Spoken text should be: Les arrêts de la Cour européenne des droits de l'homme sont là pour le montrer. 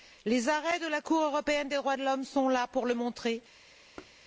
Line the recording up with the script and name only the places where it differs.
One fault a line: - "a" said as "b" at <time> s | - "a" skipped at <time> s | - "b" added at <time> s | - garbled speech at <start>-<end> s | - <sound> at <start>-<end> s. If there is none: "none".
- thud at 4.0-4.2 s